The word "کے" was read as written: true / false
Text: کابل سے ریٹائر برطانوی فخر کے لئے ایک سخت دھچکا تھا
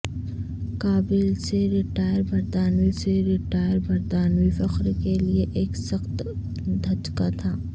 true